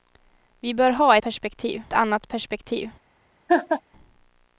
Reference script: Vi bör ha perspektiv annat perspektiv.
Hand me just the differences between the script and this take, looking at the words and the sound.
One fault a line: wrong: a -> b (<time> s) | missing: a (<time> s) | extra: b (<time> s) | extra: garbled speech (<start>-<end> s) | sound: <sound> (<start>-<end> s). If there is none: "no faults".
sound: laugh (3.5-3.8 s)